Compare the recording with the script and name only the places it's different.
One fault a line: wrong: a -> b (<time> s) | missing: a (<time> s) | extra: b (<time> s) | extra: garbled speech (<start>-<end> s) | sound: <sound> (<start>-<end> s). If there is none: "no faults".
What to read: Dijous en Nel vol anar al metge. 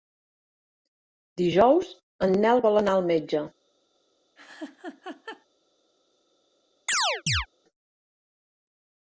sound: laugh (4.4-5.5 s)
sound: chirp (6.9-7.5 s)